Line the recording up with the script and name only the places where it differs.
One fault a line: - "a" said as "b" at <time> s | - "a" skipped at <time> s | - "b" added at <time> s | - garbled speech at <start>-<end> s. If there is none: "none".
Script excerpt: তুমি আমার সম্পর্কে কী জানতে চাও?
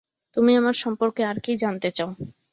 - "আর" added at 1.3 s